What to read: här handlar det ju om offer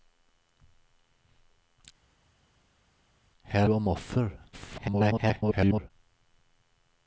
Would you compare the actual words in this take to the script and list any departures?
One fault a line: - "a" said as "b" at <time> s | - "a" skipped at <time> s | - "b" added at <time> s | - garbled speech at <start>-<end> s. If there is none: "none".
- "handlar det ju" skipped at 3.7 s
- garbled speech at 4.5-5.9 s